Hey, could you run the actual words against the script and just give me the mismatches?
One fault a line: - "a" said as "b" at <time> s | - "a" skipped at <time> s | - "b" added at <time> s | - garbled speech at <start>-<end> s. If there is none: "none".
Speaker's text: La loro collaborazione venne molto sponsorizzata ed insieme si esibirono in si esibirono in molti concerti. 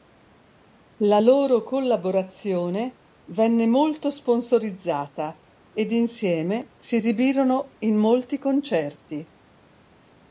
- "si esibirono in" skipped at 8.0 s